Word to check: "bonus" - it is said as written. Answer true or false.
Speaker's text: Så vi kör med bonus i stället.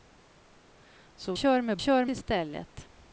false